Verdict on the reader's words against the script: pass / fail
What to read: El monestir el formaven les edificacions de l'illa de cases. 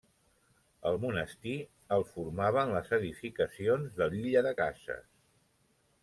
pass